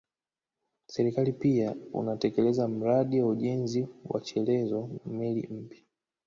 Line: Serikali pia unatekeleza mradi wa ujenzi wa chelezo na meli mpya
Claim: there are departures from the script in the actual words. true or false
true